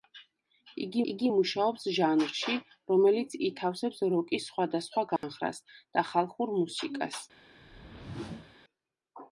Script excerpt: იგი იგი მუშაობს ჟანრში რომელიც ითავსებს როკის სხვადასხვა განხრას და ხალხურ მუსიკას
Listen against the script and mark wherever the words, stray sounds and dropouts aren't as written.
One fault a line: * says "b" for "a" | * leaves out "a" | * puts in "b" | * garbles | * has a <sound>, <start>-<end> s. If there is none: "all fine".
* has a dropout, 5.2-5.2 s
* has a whoosh, 7.6-8.6 s